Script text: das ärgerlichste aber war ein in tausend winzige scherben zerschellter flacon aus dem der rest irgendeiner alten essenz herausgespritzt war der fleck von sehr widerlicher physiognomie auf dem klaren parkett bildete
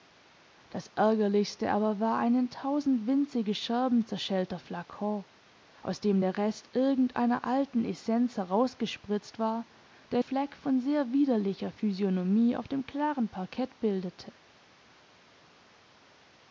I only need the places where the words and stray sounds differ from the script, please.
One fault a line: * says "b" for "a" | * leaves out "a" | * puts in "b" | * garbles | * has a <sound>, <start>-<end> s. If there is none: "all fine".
all fine